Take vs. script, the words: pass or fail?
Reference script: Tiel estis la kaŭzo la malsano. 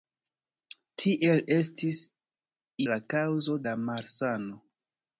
pass